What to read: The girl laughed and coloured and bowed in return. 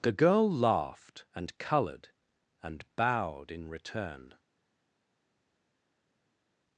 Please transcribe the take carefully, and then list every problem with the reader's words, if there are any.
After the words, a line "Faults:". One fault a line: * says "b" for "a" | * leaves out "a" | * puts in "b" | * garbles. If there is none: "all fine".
The girl laughed and coloured and bowed in return.
Faults:
all fine